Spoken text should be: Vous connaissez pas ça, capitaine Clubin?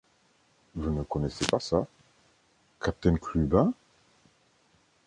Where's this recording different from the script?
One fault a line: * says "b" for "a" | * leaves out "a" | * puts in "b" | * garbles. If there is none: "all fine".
* puts in "ne"